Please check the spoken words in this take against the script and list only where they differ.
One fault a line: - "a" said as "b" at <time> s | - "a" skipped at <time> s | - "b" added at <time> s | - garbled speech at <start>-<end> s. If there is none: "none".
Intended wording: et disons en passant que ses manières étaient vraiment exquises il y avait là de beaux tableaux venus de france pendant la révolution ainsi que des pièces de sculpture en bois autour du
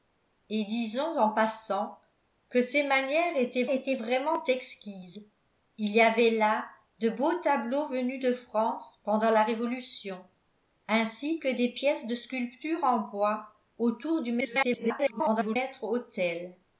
- "étaient" added at 3.7 s
- garbled speech at 14.4-15.6 s